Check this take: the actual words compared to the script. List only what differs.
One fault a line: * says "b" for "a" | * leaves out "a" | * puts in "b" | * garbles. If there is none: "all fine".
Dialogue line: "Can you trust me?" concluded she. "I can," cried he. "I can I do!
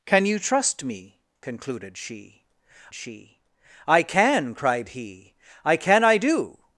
* puts in "she"